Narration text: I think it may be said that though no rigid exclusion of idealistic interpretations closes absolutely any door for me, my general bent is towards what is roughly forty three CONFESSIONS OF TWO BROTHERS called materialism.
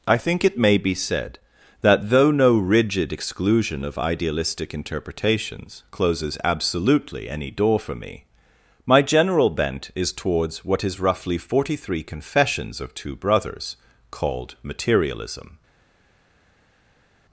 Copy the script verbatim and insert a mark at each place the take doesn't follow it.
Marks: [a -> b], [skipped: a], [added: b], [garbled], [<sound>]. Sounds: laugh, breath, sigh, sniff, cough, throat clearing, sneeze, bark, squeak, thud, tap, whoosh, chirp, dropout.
I think it may be said that though no rigid exclusion of idealistic interpretations closes absolutely any door for me, my general bent is towards what is roughly forty three CONFESSIONS OF TWO BROTHERS called materialism.